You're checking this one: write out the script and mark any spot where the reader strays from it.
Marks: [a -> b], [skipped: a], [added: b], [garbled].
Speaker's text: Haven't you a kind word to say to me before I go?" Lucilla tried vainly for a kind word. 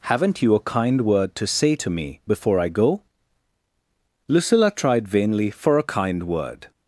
Haven't you a kind word to say to me before I go?" Lucilla tried vainly for a kind word.